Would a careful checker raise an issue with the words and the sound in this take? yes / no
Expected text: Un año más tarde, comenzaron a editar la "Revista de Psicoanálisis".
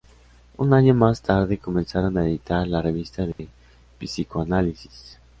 yes